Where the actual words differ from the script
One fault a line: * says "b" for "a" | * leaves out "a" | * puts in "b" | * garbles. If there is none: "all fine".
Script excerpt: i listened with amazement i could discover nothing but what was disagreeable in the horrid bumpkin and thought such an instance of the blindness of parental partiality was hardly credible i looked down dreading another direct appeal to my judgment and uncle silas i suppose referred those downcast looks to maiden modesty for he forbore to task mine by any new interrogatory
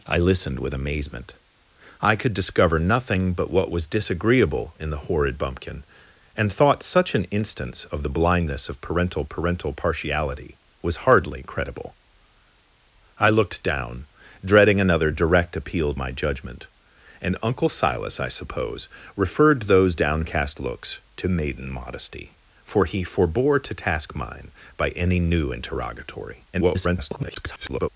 * puts in "parental"
* leaves out "to"
* garbles